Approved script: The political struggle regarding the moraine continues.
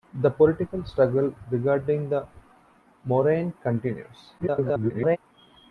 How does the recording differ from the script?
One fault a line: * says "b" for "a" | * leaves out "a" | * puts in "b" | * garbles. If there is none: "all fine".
* garbles